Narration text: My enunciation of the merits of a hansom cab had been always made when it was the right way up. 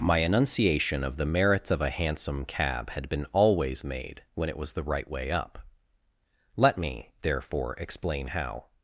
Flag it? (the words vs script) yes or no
yes